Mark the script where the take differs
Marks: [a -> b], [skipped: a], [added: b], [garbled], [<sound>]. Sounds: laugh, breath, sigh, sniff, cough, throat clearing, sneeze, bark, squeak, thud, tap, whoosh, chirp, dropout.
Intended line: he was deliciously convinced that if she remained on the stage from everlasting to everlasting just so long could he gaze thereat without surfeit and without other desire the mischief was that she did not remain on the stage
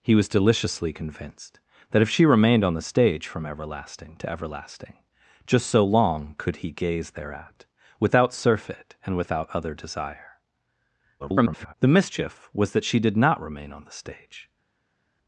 he was deliciously convinced that if she remained on the stage from everlasting to everlasting just so long could he gaze thereat without surfeit and without other desire [garbled] the mischief was that she did not remain on the stage